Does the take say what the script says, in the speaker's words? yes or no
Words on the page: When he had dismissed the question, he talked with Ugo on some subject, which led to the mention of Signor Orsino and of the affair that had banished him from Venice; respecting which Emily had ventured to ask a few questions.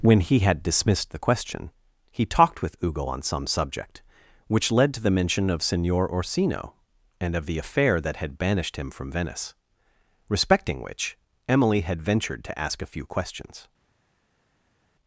yes